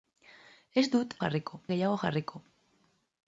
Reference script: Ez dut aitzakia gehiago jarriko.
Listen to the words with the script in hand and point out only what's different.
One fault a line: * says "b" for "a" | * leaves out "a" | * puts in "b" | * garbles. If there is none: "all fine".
* says "jarriko" for "aitzakia"